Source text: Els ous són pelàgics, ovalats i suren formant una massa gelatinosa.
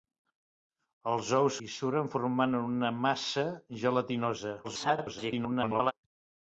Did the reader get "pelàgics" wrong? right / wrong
wrong